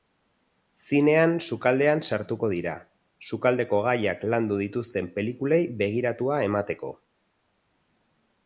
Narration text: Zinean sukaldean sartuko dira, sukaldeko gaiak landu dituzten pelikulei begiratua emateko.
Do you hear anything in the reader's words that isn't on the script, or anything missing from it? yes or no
no